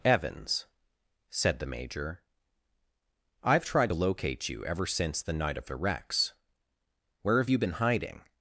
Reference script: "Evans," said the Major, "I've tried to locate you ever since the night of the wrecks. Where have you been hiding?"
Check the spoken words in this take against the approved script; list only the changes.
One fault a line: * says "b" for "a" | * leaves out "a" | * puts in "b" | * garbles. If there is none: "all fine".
all fine